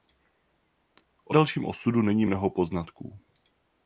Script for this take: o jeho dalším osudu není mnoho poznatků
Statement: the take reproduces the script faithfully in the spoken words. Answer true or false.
false